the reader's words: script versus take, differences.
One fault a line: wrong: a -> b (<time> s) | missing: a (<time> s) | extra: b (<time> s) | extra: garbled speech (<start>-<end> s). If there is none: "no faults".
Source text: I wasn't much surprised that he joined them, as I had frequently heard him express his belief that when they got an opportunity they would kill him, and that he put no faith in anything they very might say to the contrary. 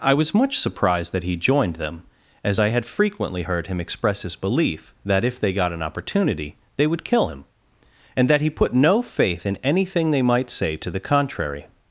wrong: wasn't -> was (0.1 s)
wrong: when -> if (5.2 s)
missing: very (10.2 s)